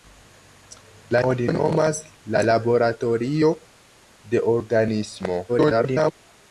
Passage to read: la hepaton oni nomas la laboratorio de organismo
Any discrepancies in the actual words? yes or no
yes